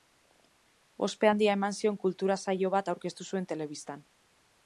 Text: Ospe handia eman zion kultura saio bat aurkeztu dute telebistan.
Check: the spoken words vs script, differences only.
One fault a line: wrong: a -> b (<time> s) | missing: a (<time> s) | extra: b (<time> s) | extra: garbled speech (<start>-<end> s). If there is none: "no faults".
wrong: dute -> zuen (3.3 s)